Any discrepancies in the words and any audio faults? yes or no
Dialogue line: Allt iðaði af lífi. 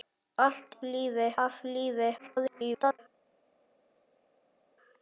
yes